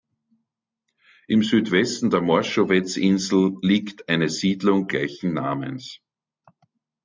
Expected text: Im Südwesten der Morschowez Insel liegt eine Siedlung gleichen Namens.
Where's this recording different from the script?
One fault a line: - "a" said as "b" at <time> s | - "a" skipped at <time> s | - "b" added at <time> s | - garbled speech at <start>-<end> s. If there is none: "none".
none